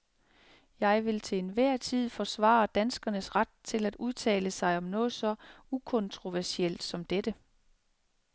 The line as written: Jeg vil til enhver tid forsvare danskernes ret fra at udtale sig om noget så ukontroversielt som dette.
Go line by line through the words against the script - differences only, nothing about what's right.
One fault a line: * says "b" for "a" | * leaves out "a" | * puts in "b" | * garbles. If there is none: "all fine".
* says "til" for "fra"